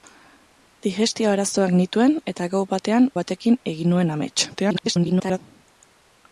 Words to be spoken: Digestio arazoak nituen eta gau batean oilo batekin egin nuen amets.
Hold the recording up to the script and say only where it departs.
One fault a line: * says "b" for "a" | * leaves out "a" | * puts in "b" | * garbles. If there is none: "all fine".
* leaves out "oilo"
* garbles